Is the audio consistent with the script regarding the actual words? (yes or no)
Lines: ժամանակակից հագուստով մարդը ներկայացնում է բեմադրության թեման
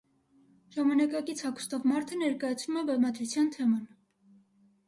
yes